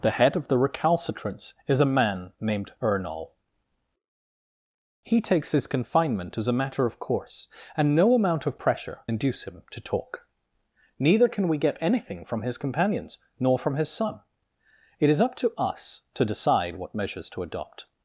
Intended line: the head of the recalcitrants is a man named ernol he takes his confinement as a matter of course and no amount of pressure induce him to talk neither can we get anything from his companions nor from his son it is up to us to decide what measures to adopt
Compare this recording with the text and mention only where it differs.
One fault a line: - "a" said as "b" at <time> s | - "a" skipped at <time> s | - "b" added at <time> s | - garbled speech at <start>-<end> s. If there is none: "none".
none